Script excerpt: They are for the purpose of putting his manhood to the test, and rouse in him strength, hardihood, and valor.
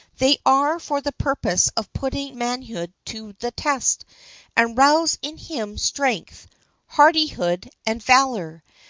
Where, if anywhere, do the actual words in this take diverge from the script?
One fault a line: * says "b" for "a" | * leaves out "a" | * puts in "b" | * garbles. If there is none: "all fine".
* leaves out "his"